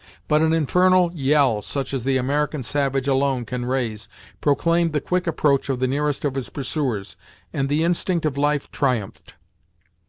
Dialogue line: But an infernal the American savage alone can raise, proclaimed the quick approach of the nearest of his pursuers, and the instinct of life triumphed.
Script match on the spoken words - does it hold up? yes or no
no